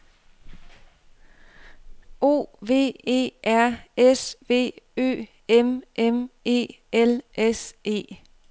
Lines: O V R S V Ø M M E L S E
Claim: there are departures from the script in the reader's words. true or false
true